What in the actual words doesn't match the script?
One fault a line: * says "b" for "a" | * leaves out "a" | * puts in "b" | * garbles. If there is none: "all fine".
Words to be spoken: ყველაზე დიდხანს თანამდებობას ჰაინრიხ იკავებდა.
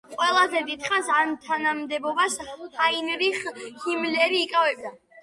* puts in "ამ"
* puts in "ჰიმლერი"